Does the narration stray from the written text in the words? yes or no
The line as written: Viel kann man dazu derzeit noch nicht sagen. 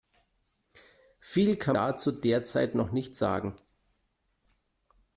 yes